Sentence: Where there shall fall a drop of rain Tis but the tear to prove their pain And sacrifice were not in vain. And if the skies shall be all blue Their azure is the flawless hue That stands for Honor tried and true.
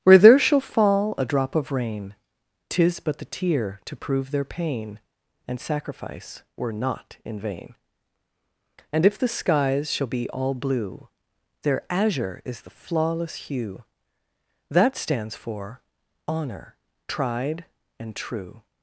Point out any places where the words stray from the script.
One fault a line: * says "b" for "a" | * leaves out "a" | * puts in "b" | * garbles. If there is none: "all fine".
all fine